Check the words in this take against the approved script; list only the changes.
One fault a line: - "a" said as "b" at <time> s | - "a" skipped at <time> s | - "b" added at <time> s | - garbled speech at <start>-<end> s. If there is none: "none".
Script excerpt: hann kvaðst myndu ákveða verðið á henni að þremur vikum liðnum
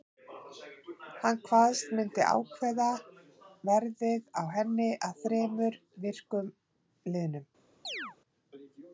none